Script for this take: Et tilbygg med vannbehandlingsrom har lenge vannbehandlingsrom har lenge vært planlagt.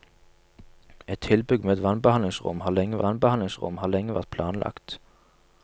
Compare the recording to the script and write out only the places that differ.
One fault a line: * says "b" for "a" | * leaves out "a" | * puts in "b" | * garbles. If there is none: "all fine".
all fine